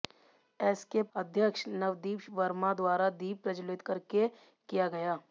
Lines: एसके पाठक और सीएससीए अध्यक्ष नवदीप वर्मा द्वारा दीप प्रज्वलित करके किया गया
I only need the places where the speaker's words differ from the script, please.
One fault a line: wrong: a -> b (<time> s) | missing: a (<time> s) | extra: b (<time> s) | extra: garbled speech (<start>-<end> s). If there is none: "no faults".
missing: पाठक और सीएससीए (1.0 s)